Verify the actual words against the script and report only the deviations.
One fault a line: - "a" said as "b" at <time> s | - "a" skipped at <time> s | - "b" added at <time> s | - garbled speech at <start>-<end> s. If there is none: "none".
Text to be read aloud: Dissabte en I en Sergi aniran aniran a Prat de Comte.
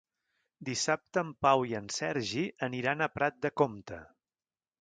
- "Pau" added at 1.5 s
- "aniran" skipped at 3.0 s